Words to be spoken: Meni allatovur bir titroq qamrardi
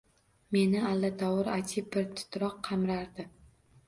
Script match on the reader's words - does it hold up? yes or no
no